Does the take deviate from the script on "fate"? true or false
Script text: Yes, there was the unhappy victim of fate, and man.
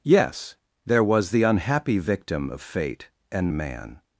false